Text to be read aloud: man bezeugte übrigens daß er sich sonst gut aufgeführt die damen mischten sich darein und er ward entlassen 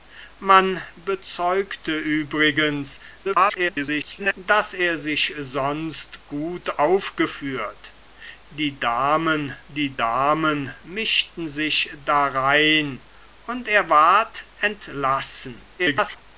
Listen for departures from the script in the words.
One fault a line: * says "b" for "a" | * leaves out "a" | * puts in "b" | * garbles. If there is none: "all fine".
* garbles
* puts in "die damen"
* garbles